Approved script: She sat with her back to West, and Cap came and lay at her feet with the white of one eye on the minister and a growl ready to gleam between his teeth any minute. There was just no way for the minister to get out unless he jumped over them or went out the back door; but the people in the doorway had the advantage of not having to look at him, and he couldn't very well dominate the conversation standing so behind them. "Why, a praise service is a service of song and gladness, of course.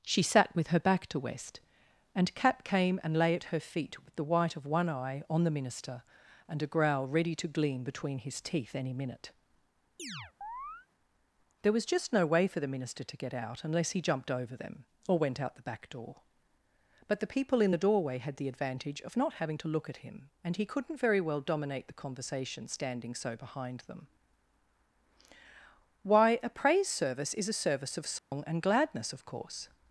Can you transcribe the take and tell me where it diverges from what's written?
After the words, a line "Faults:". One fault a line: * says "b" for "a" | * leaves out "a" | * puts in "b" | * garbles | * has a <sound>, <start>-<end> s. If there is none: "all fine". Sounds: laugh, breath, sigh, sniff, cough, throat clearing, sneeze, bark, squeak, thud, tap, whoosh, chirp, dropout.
She sat with her back to West, and Cap came and lay at her feet with the white of one eye on the minister and a growl ready to gleam between his teeth any minute. There was just no way for the minister to get out unless he jumped over them or went out the back door; but the people in the doorway had the advantage of not having to look at him, and he couldn't very well dominate the conversation standing so behind them. "Why, a praise service is a service of song and gladness, of course.
Faults:
* has a chirp, 10.0-10.9 s
* has a dropout, 28.2-28.3 s